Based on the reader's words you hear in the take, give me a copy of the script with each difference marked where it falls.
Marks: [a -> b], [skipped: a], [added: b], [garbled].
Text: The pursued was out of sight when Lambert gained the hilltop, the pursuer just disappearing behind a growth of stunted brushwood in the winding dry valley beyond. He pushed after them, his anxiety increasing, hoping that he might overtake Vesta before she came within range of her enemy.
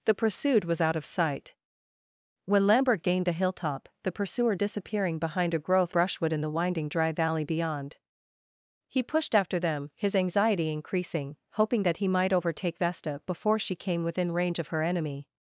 The pursued was out of sight when Lambert gained the hilltop, the pursuer [skipped: just] disappearing behind a growth [skipped: of stunted] brushwood in the winding dry valley beyond. He pushed after them, his anxiety increasing, hoping that he might overtake Vesta before she came within range of her enemy.